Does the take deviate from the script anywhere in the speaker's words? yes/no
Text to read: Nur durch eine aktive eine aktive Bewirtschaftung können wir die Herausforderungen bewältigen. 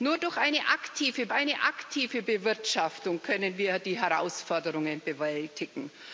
no